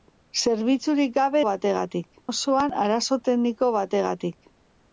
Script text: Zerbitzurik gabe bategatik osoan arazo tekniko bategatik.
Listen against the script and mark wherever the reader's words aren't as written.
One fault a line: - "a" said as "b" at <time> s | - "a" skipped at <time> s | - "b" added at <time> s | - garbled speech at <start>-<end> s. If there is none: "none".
none